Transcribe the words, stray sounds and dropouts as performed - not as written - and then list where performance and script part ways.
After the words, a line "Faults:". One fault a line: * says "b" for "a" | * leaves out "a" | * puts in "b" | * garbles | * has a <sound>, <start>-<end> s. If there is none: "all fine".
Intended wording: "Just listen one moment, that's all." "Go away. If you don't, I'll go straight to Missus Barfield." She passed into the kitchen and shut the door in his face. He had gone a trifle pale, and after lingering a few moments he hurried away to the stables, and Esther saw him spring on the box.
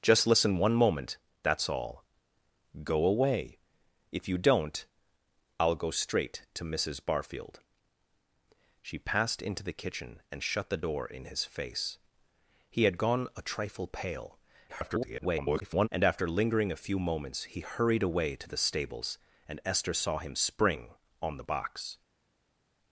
"Just listen one moment, that's all." "Go away. If you don't, I'll go straight to Missus Barfield." She passed into the kitchen and shut the door in his face. He had gone a trifle pale, [garbled] and after lingering a few moments he hurried away to the stables, and Esther saw him spring on the box.
Faults:
* garbles